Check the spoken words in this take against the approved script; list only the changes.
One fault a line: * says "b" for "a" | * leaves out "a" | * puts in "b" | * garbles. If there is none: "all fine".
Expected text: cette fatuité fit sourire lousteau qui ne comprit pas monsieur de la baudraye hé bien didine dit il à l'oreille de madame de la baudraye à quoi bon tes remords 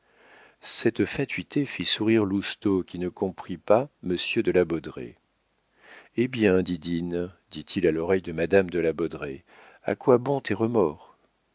all fine